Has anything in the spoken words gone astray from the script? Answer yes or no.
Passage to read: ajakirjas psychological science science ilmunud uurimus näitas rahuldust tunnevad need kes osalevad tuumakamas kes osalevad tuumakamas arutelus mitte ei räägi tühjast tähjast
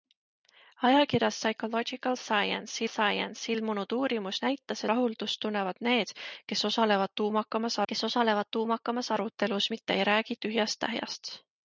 no